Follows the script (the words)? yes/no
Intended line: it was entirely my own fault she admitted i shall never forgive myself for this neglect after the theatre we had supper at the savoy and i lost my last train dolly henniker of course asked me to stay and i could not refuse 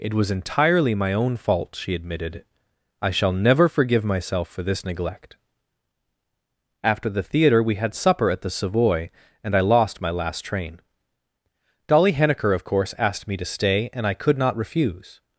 yes